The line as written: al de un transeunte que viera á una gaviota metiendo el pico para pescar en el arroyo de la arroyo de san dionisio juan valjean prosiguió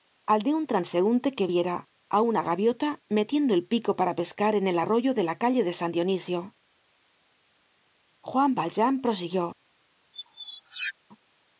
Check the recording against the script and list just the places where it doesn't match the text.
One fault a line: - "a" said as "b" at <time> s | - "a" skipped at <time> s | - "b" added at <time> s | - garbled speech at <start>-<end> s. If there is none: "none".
- "arroyo" said as "calle" at 5.4 s